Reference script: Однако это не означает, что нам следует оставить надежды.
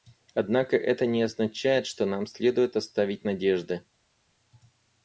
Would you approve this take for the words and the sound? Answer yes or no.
yes